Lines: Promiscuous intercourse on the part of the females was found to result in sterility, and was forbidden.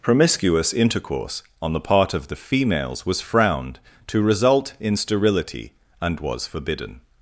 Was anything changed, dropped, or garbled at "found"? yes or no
yes